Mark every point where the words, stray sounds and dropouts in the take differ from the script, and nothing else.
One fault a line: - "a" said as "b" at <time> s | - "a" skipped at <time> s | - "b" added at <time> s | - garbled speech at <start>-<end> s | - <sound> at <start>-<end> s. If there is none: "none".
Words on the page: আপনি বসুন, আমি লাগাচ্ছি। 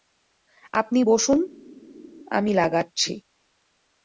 none